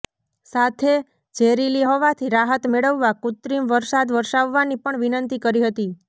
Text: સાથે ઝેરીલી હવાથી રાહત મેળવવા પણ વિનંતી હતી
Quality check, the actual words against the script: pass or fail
fail